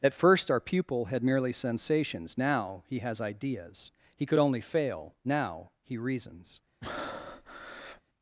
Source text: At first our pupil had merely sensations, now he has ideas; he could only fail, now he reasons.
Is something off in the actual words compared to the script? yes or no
no